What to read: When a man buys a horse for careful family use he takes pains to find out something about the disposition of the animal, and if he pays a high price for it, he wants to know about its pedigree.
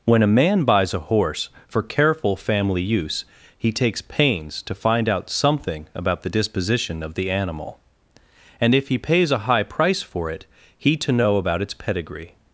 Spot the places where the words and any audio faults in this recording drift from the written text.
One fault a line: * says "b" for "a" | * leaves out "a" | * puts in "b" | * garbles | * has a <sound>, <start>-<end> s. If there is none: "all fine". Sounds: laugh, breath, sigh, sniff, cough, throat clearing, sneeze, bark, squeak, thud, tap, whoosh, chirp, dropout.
* leaves out "wants"